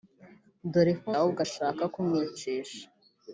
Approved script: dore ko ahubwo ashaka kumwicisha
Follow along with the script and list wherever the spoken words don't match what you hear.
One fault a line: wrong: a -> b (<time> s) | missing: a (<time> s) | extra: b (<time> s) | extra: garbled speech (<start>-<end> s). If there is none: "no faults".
no faults